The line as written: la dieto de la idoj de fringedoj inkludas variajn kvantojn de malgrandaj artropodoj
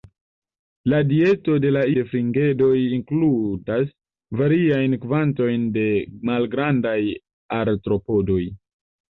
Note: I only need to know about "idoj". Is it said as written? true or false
false